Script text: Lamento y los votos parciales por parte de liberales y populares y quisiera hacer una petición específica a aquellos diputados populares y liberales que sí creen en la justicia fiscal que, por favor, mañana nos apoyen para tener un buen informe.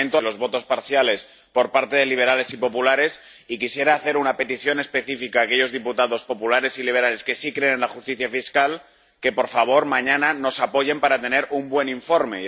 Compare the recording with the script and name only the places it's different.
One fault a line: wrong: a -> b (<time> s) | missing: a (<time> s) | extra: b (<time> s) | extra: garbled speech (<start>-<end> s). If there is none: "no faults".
no faults